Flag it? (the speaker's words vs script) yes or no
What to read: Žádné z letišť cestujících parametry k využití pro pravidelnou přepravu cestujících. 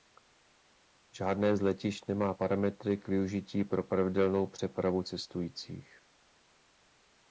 yes